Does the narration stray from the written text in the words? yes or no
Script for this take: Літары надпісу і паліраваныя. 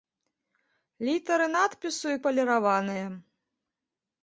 no